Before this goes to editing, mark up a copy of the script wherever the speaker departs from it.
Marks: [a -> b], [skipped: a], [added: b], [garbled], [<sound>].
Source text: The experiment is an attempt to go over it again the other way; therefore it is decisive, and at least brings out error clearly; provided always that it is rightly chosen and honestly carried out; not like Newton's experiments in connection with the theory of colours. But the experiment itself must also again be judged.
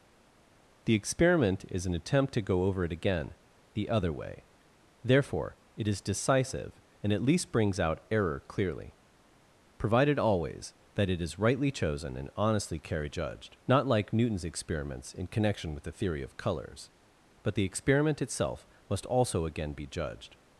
The experiment is an attempt to go over it again the other way; therefore it is decisive, and at least brings out error clearly; provided always that it is rightly chosen and honestly carried [out; -> judged] not like Newton's experiments in connection with the theory of colours. But the experiment itself must also again be judged.